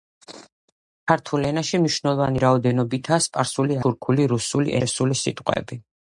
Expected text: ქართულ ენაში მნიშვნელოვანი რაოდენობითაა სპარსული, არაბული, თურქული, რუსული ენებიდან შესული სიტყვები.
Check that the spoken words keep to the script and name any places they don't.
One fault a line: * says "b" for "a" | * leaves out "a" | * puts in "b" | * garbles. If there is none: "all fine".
* leaves out "არაბული"
* leaves out "ენებიდან"